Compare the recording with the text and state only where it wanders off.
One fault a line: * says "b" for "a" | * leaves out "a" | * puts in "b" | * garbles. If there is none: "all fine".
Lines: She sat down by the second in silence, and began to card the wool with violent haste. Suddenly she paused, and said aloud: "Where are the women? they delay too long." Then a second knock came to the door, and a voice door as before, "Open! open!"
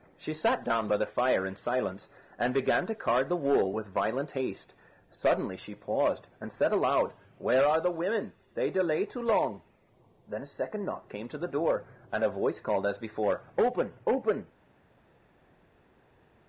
* says "fire" for "second"
* says "called" for "door"